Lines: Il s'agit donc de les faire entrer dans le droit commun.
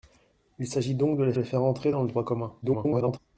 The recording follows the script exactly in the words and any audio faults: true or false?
false